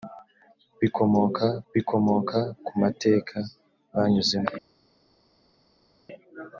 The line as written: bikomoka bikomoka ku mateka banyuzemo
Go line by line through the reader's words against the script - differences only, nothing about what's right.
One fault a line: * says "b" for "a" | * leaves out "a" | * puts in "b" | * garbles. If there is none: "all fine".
all fine